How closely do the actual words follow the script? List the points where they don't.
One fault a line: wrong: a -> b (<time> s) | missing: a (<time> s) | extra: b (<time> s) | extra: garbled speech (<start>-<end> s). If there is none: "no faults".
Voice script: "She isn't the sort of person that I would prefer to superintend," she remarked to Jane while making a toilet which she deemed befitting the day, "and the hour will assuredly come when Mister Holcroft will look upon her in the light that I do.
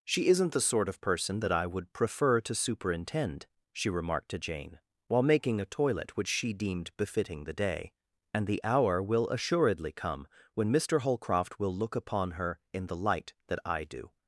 no faults